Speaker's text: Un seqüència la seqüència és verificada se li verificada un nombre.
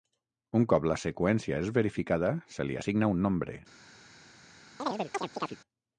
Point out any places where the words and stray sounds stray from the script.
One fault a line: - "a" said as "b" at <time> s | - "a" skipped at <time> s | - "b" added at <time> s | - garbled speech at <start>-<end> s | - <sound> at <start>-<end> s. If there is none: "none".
- "seqüència" said as "cop" at 0.7 s
- "verificada" said as "assigna" at 2.8 s
- chirp at 4.8-5.6 s